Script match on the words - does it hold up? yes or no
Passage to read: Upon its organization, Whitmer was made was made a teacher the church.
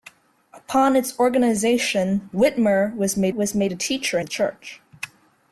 yes